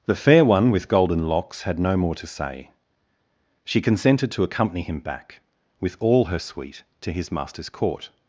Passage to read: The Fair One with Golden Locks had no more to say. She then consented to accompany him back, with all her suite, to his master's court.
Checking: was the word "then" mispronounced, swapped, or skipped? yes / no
yes